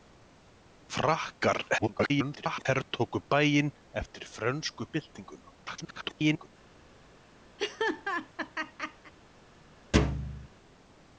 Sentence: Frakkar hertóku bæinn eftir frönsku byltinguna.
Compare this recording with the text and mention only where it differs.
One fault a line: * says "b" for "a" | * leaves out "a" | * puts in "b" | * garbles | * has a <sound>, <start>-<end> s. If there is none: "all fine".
* garbles
* garbles
* has a laugh, 7.6-9.1 s
* has a thud, 9.9-10.5 s